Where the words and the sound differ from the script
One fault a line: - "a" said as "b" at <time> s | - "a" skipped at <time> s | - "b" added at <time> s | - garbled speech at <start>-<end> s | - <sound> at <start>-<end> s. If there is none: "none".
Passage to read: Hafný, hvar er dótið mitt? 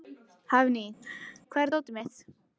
- laugh at 1.0-1.4 s